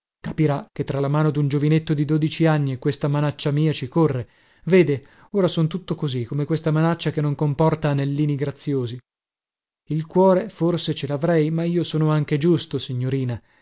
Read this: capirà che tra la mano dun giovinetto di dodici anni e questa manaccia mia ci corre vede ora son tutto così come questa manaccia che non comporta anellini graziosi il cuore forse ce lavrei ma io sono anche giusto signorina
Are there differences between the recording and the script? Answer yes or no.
no